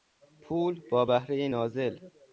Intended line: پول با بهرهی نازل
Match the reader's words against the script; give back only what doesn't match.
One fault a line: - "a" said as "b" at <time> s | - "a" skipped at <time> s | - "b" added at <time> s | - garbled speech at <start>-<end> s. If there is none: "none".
none